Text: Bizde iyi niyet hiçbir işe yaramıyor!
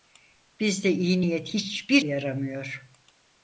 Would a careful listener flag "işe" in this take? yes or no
yes